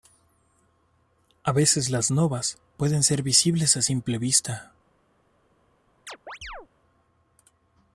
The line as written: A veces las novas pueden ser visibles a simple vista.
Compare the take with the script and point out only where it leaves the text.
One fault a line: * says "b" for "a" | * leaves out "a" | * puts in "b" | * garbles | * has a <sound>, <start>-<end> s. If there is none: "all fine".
* has a chirp, 6.1-6.7 s